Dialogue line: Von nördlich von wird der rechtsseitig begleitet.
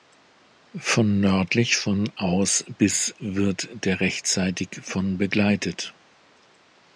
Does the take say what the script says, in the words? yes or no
no